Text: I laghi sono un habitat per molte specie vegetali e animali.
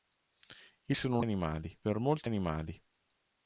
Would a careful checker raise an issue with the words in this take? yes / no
yes